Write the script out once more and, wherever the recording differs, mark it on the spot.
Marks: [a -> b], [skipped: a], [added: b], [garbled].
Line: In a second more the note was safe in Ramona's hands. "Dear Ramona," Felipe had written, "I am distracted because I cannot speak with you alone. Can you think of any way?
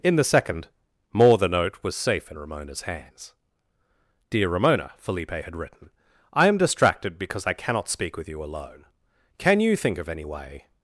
In [a -> the] second more the note was safe in Ramona's hands. "Dear Ramona," Felipe had written, "I am distracted because I cannot speak with you alone. Can you think of any way?